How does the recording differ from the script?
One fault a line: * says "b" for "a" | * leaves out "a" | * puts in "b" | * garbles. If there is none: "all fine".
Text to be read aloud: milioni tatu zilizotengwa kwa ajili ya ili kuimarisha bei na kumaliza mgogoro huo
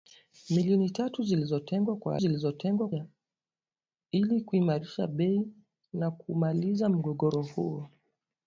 * says "zilizotengwa" for "ajili"